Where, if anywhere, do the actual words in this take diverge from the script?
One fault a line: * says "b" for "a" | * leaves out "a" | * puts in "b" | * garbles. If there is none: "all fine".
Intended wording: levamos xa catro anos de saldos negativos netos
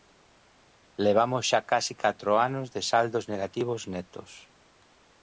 * puts in "case"